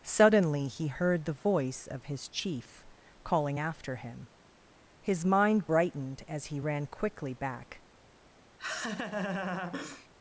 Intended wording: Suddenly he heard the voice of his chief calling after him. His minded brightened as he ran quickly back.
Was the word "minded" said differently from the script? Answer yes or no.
yes